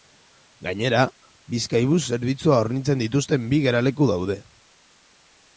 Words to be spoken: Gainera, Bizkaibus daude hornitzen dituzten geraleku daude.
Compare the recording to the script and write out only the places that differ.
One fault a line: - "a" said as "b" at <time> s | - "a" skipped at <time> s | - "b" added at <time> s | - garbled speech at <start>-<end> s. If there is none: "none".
- "daude" said as "zerbitzua" at 2.1 s
- "bi" added at 3.5 s